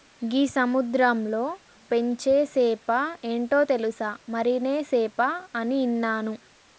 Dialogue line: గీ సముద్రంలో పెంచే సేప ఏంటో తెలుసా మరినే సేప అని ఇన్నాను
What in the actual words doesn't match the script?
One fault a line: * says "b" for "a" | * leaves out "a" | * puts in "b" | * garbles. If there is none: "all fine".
all fine